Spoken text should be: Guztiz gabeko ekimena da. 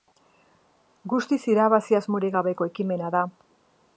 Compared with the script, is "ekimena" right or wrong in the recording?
right